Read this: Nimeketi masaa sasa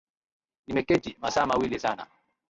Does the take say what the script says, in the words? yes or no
no